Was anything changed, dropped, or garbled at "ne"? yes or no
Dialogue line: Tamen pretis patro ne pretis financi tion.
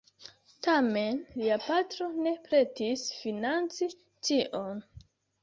no